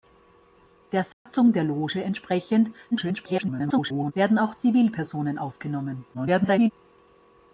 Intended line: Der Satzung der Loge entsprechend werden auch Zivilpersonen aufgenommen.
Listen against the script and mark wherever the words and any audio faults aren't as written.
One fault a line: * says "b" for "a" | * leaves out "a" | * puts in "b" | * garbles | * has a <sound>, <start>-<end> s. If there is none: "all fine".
* has a dropout, 1.1-1.3 s
* garbles
* garbles